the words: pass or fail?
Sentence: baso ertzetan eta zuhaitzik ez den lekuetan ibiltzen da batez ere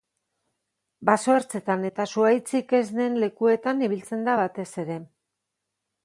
pass